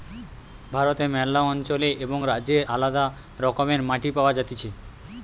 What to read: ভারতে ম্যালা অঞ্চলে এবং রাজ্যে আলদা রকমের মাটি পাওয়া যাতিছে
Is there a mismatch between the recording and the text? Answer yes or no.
no